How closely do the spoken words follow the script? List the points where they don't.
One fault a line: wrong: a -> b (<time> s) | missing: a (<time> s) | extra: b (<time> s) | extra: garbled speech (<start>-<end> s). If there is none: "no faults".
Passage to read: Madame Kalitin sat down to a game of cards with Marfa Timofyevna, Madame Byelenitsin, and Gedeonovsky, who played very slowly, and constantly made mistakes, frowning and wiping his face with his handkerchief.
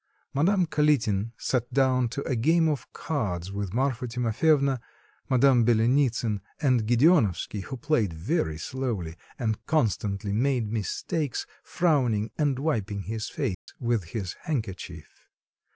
no faults